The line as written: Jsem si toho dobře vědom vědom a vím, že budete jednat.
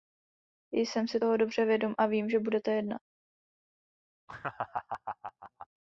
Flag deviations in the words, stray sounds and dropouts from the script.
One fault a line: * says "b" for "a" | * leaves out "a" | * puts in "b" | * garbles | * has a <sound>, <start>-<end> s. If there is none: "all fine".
* leaves out "vědom"
* has a laugh, 4.3-5.7 s